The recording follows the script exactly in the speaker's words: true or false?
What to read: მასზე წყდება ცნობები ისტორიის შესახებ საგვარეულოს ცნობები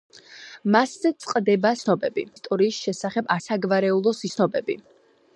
true